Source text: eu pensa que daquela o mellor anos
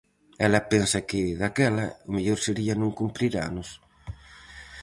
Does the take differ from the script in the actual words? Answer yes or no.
yes